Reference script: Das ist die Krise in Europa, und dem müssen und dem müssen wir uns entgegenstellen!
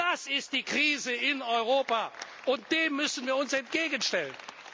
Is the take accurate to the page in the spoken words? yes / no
no